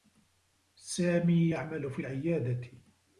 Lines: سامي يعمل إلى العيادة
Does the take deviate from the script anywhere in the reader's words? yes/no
yes